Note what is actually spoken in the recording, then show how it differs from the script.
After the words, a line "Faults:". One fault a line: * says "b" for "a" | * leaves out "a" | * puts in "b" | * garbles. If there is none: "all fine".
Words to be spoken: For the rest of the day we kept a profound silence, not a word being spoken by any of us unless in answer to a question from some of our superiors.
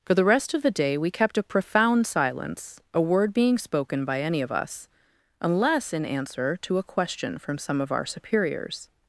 For the rest of the day we kept a profound silence, a word being spoken by any of us unless in answer to a question from some of our superiors.
Faults:
* leaves out "not"